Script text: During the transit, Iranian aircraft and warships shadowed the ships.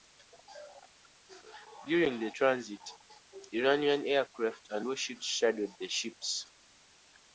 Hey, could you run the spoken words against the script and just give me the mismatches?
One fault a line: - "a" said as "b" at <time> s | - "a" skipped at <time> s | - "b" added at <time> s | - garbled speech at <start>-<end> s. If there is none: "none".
none